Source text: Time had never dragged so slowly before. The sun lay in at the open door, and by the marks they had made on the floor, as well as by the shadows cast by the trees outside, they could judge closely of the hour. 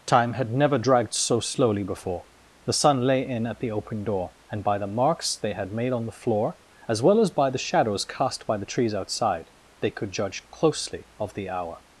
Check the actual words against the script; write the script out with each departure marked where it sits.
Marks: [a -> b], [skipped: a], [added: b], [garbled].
Time had never dragged so slowly before. The sun lay in at the open door, and by the marks they had made on the floor, as well as by the shadows cast by the trees outside, they could judge closely of the hour.